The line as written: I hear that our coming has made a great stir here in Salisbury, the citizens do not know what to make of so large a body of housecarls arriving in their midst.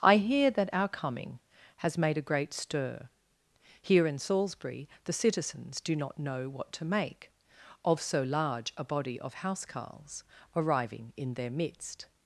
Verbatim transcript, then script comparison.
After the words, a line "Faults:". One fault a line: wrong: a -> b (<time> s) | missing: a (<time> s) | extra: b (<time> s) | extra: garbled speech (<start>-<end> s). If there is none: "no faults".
I hear that our coming has made a great stir here in Salisbury, the citizens do not know what to make of so large a body of housecarls arriving in their midst.
Faults:
no faults